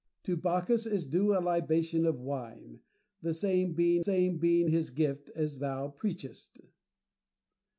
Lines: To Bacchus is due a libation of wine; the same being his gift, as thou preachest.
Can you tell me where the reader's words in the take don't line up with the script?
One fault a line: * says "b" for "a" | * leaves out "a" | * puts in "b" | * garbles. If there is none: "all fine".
* puts in "same being"